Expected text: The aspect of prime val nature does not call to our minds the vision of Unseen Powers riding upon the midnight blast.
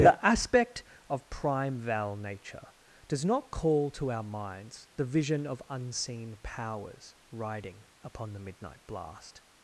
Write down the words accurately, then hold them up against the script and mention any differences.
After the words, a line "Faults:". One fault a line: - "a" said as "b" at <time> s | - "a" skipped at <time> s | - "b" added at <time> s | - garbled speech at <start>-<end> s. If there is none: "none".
The aspect of prime val nature does not call to our minds the vision of Unseen Powers riding upon the midnight blast.
Faults:
none